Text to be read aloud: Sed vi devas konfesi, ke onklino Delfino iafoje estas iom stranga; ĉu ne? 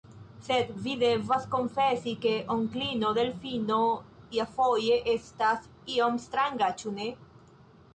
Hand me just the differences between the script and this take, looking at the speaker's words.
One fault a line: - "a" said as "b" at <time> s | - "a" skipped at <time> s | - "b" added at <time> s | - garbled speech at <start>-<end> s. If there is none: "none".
none